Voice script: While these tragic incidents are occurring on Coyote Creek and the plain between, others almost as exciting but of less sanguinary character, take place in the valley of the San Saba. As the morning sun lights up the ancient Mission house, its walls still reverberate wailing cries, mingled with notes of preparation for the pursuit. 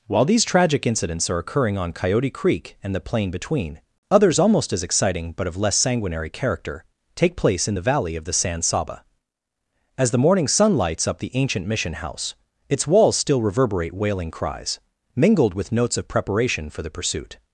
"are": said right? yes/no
yes